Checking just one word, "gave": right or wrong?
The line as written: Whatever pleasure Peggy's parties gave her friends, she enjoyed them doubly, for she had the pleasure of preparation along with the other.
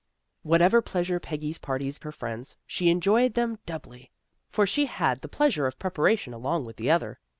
wrong